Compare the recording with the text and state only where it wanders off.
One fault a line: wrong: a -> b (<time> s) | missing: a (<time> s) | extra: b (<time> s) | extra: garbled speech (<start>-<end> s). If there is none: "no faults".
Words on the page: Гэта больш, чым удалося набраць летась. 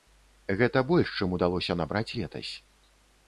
no faults